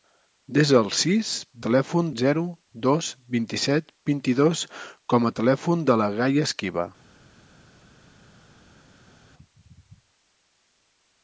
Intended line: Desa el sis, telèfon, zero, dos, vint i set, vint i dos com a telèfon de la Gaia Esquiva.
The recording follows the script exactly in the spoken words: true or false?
true